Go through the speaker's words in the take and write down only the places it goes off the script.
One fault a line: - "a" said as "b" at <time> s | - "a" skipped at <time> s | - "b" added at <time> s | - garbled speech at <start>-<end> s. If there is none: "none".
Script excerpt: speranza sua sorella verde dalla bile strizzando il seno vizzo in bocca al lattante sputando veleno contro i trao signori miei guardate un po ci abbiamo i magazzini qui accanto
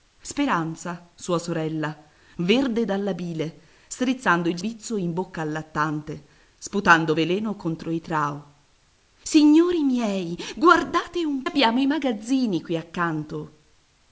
- "seno" skipped at 4.6 s
- "po ci" skipped at 11.4 s